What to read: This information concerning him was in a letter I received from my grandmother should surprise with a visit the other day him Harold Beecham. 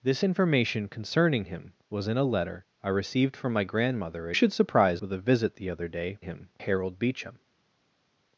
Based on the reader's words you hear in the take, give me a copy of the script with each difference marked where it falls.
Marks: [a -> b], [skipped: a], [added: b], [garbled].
This information concerning him was in a letter I received from my grandmother should surprise with a visit the other day him Harold Beecham.